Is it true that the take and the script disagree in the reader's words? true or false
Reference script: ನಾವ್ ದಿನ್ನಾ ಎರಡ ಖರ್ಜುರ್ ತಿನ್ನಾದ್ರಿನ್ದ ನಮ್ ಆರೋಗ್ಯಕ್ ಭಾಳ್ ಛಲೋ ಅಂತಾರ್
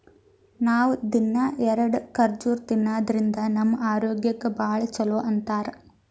false